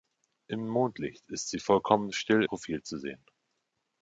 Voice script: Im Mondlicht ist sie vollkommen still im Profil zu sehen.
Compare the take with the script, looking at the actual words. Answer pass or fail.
fail